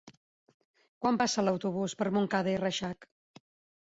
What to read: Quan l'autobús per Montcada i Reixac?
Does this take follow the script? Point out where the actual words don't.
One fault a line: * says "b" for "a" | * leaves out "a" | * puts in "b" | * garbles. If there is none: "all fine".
* puts in "passa"